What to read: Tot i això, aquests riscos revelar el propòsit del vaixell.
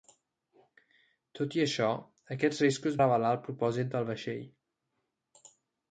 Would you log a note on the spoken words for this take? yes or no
no